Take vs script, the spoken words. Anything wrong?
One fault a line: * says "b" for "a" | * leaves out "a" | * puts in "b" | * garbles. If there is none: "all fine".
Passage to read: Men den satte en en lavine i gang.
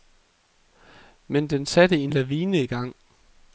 * leaves out "en"